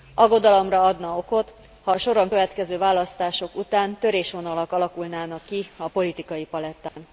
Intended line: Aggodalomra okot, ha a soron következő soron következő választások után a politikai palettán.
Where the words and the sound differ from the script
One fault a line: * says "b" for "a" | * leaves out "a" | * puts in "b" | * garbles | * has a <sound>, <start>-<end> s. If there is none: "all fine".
* puts in "adna"
* says "választások után törésvonalak alakulnának ki" for "soron következő választások után"
* has a dropout, 6.9-7.0 s